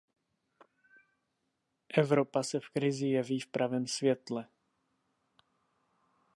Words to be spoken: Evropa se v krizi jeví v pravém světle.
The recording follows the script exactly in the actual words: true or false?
true